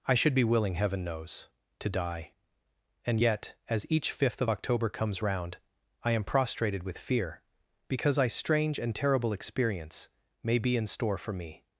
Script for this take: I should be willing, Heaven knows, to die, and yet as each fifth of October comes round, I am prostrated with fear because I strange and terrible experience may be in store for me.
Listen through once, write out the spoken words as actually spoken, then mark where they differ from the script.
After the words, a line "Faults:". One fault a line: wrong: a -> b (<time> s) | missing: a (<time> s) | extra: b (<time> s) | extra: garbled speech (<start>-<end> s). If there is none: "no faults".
I should be willing, Heaven knows, to die, and yet as each fifth of October comes round, I am prostrated with fear because I strange and terrible experience may be in store for me.
Faults:
no faults